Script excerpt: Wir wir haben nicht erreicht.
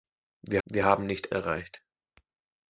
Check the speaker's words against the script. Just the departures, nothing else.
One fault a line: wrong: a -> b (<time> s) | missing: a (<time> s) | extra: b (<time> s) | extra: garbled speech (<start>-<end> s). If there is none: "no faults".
no faults